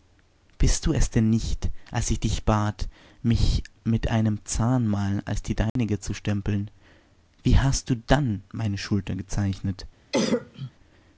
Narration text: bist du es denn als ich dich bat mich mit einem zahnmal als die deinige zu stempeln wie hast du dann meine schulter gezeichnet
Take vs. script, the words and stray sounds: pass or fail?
fail